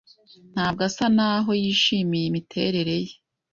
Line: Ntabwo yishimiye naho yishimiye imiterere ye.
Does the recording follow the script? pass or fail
fail